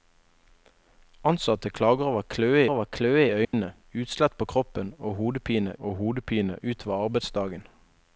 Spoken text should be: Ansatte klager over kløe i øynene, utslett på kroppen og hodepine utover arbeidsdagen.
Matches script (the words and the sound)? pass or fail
fail